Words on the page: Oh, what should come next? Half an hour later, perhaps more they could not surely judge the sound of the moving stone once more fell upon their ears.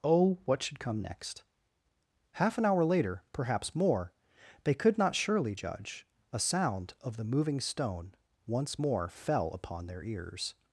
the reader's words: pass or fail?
fail